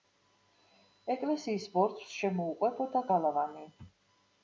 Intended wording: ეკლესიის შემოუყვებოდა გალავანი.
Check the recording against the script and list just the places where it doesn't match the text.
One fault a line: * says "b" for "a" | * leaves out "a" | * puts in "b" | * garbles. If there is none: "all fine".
* puts in "ბორცვს"